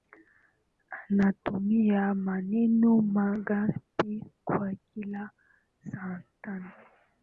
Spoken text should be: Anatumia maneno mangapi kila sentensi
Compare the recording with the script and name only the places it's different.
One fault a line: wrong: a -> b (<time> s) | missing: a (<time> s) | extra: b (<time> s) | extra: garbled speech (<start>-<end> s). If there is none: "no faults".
extra: kwa (4.4 s)